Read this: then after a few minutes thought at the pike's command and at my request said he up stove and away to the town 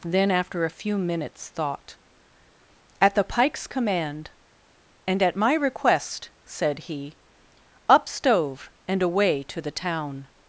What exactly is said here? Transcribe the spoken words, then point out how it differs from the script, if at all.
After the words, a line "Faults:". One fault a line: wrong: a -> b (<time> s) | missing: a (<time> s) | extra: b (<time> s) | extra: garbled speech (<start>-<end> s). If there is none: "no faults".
then after a few minutes thought at the pike's command and at my request said he up stove and away to the town
Faults:
no faults